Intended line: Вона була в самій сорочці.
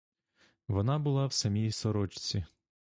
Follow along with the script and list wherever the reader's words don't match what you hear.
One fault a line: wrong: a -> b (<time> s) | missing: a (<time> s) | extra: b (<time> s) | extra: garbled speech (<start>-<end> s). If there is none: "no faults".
no faults